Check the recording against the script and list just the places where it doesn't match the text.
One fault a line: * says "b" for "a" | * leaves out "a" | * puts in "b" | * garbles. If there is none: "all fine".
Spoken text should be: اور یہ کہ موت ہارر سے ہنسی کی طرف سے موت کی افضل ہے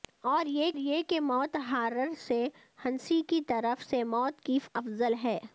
* puts in "یہ"